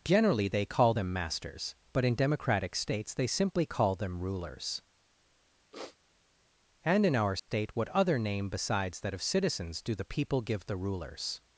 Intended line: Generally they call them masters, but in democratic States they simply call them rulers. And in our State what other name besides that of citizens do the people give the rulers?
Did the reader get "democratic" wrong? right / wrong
right